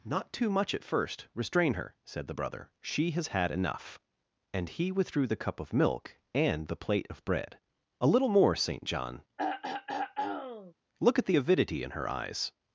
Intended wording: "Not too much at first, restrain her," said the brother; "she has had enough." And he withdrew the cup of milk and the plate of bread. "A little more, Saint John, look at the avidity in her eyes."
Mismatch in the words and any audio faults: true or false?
true